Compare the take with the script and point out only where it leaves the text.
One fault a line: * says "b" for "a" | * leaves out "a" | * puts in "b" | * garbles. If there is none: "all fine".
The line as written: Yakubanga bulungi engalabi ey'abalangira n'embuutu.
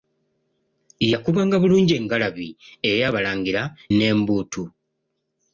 all fine